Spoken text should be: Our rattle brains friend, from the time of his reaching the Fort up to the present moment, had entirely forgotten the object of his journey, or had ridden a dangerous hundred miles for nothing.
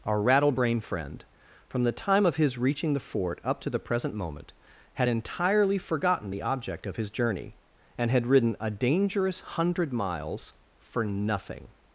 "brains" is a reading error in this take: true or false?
true